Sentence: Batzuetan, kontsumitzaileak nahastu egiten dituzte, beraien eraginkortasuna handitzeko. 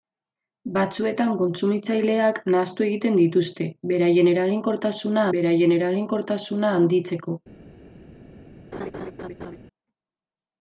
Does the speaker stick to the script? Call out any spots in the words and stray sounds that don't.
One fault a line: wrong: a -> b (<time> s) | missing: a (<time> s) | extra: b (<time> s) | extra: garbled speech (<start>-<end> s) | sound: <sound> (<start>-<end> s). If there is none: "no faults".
extra: beraien eraginkortasuna (5.4 s)
sound: laugh (8.7-9.6 s)